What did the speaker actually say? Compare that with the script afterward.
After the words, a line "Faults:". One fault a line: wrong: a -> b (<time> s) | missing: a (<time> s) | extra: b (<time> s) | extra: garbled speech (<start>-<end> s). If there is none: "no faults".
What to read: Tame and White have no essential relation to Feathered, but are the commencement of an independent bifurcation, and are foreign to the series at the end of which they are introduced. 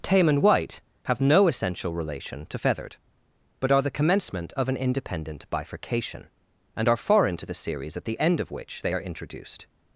Tame and White have no essential relation to Feathered, but are the commencement of an independent bifurcation, and are foreign to the series at the end of which they are introduced.
Faults:
no faults